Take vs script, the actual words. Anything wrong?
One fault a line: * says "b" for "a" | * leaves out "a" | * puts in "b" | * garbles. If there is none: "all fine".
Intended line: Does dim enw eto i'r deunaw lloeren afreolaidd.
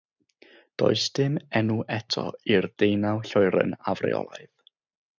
all fine